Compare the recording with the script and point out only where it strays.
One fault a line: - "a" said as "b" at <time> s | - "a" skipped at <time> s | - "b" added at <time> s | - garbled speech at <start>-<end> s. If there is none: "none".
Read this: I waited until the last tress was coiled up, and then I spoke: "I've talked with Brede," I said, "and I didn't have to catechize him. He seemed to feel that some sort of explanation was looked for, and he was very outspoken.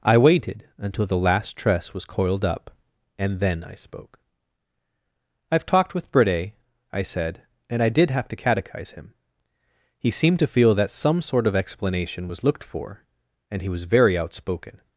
- "didn't" said as "did" at 7.9 s